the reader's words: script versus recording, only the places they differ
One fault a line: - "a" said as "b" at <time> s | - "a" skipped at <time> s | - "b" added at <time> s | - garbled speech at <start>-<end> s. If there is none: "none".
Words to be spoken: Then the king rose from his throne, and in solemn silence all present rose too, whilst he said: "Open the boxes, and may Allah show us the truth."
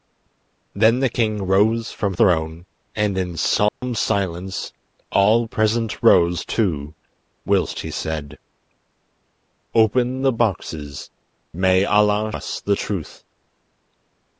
- "his" skipped at 2.1 s
- "and" skipped at 11.1 s
- "show" skipped at 12.3 s